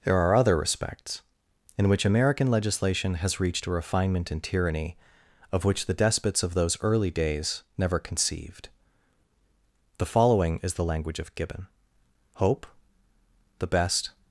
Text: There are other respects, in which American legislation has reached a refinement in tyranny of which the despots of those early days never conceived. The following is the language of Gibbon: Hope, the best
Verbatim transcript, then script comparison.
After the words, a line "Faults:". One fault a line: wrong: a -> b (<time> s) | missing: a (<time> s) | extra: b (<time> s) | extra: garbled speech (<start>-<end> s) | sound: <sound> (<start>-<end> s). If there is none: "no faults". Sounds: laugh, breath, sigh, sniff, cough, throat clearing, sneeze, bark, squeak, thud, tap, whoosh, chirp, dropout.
There are other respects, in which American legislation has reached a refinement in tyranny of which the despots of those early days never conceived. The following is the language of Gibbon: Hope, the best
Faults:
no faults